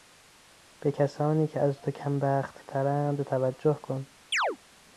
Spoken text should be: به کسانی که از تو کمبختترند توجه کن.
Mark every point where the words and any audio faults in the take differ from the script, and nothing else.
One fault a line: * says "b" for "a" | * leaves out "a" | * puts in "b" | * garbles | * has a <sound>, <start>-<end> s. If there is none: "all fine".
* has a chirp, 4.3-4.6 s